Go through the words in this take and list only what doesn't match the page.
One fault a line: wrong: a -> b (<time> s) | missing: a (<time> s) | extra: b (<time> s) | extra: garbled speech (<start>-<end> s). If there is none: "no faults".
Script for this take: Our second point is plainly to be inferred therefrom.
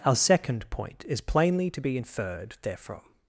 no faults